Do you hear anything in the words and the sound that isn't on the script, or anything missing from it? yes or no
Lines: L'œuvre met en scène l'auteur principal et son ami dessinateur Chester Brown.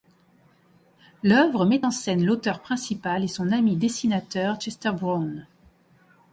no